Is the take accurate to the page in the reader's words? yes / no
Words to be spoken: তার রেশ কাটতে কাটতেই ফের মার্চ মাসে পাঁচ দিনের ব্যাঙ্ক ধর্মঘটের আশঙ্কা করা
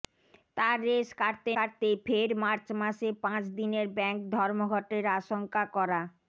yes